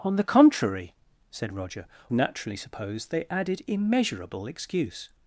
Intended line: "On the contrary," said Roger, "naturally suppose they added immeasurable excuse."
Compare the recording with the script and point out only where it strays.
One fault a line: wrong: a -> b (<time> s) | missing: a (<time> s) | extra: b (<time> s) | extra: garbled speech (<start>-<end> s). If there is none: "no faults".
no faults